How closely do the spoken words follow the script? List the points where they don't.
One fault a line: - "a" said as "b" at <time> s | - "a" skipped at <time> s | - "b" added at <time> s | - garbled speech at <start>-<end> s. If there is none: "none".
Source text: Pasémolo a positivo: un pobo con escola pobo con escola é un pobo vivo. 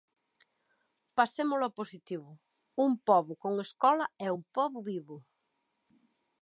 - "pobo con escola" skipped at 4.1 s